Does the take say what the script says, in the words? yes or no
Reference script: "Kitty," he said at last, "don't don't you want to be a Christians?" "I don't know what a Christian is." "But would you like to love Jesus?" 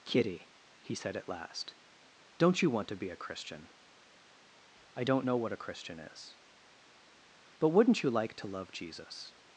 no